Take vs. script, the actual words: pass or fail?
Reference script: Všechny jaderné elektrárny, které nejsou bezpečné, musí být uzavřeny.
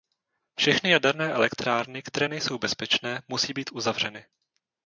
pass